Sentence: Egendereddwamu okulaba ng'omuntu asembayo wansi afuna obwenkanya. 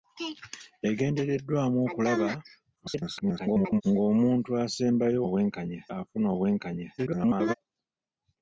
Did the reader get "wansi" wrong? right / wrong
wrong